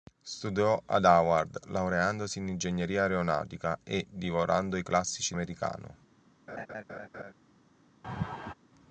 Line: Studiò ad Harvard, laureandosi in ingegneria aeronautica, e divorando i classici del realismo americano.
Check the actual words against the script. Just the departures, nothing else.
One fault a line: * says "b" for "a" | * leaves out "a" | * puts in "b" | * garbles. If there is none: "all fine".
* leaves out "del realismo"